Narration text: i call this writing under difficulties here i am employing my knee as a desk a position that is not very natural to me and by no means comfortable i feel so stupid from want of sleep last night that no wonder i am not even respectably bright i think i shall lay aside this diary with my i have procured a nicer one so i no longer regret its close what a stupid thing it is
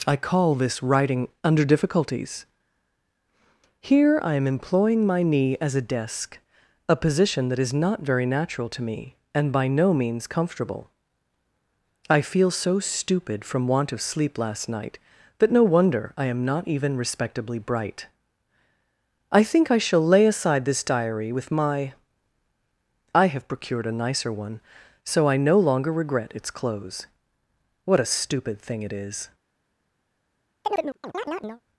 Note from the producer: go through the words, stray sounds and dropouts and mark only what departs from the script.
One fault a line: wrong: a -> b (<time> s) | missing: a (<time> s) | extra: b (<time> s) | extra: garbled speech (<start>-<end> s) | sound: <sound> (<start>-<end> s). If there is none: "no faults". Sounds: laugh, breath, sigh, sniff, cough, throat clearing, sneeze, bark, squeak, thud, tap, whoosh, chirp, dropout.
sound: chirp (30.6-31.6 s)